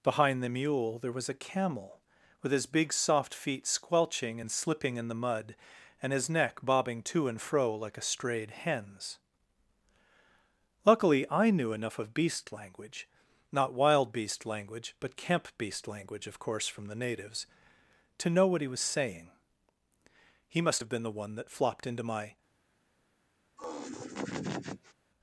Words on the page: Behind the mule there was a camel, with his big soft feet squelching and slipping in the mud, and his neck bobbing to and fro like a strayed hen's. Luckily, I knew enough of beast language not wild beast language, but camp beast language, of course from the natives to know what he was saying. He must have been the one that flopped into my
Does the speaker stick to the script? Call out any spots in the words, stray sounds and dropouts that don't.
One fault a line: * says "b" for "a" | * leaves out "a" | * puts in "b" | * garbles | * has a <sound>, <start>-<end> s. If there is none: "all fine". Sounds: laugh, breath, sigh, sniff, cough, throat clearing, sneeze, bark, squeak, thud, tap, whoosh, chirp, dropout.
* has a laugh, 23.6-24.9 s